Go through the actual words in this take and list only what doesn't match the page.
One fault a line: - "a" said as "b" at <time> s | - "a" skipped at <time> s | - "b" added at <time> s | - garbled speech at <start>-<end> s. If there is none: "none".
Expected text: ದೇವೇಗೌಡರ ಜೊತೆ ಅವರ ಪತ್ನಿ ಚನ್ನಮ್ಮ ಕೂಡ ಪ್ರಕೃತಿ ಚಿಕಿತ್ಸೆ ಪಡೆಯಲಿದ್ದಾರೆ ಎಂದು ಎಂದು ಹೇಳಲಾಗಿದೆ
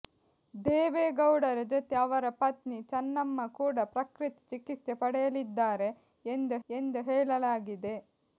none